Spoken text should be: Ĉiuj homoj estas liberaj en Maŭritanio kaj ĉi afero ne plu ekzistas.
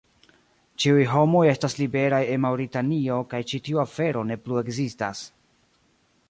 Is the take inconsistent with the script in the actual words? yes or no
yes